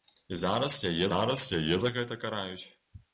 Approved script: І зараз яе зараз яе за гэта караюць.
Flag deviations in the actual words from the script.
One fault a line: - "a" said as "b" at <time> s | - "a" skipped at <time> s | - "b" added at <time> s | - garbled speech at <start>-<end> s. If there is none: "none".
none